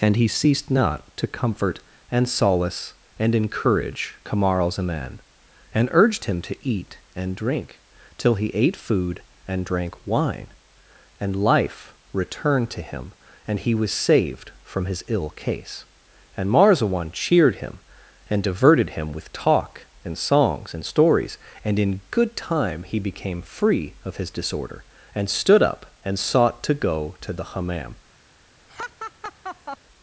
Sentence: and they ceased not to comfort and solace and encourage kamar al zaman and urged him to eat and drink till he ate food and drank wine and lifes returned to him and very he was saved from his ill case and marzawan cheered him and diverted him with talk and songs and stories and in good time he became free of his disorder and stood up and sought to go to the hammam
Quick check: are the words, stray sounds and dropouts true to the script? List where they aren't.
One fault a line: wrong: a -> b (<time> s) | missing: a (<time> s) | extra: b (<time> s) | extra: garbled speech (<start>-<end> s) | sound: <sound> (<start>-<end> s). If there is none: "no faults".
wrong: they -> he (0.1 s)
wrong: lifes -> life (11.3 s)
missing: very (13.6 s)
sound: laugh (28.7-29.8 s)